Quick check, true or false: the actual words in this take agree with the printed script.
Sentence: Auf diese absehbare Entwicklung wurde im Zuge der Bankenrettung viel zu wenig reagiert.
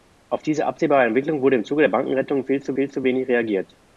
false